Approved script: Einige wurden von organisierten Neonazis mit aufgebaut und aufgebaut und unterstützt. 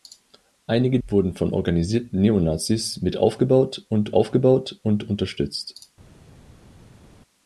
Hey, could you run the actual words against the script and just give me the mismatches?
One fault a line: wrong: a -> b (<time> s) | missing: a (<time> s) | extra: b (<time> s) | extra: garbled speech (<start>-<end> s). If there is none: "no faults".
no faults